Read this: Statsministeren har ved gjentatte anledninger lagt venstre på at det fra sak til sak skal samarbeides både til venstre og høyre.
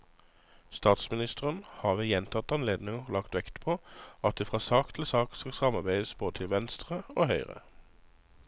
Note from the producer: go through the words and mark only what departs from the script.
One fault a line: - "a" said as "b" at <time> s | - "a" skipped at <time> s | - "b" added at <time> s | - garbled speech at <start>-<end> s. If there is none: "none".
- "venstre" said as "vekt" at 3.4 s